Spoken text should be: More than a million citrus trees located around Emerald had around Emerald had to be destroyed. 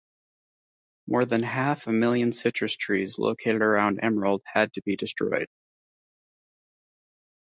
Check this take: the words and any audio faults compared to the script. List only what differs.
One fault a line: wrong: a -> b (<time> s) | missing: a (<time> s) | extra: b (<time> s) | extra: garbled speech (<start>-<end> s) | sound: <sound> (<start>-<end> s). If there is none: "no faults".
extra: half (1.4 s)
missing: around Emerald had (4.7 s)